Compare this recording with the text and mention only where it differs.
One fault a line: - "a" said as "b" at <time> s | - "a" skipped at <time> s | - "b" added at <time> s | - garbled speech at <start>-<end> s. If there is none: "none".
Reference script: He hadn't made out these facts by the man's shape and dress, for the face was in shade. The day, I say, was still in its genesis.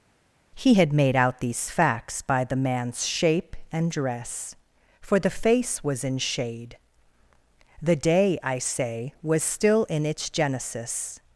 - "hadn't" said as "had" at 0.7 s